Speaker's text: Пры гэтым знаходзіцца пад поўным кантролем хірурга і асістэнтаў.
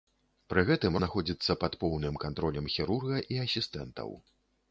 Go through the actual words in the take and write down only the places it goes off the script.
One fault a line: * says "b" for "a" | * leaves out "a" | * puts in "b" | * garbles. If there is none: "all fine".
all fine